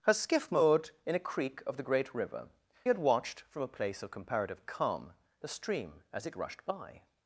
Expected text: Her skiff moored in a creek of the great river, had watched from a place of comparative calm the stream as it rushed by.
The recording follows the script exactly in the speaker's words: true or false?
true